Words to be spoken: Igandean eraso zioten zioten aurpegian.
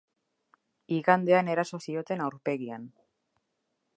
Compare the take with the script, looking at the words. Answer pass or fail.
fail